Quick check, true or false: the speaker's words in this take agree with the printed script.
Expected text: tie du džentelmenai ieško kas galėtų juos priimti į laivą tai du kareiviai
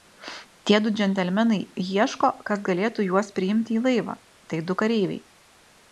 true